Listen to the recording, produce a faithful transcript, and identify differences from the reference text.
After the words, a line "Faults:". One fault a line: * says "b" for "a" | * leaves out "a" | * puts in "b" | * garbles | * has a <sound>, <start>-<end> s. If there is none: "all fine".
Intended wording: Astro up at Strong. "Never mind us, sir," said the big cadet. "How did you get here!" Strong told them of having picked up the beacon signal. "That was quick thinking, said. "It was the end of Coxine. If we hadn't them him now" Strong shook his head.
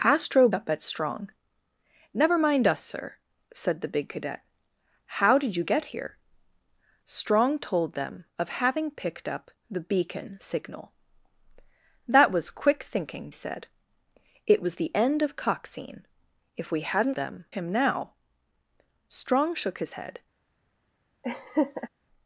Astro up at Strong. "Never mind us, sir," said the big cadet. "How did you get here!" Strong told them of having picked up the beacon signal. "That was quick thinking, said. "It was the end of Coxine. If we hadn't them him now" Strong shook his head.
Faults:
* has a laugh, 21.2-21.9 s